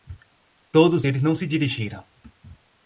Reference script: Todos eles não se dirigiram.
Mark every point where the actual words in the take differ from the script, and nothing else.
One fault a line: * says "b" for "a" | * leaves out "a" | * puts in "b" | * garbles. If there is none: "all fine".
all fine